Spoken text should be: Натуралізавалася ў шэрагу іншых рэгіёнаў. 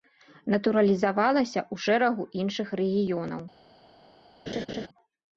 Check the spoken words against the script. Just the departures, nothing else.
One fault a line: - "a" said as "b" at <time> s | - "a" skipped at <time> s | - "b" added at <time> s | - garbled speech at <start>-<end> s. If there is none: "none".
none